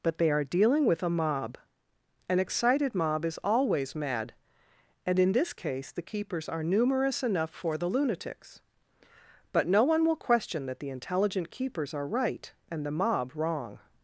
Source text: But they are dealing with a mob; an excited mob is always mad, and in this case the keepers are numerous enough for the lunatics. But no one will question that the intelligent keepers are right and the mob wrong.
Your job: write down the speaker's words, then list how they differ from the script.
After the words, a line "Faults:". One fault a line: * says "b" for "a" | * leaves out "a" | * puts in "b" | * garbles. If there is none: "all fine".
But they are dealing with a mob; an excited mob is always mad, and in this case the keepers are numerous enough for the lunatics. But no one will question that the intelligent keepers are right and the mob wrong.
Faults:
all fine